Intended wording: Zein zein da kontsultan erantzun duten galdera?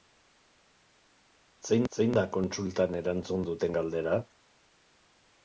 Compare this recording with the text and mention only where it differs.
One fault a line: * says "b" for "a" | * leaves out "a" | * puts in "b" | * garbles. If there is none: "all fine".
all fine